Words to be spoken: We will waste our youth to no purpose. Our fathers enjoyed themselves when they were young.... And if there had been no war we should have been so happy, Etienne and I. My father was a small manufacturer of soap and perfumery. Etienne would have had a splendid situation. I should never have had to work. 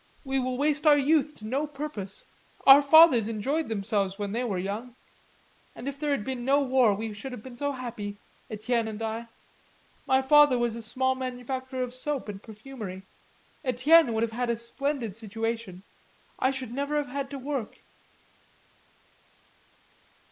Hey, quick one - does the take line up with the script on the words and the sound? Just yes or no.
yes